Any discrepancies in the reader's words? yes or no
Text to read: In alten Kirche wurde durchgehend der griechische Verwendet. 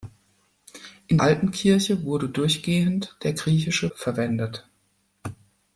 no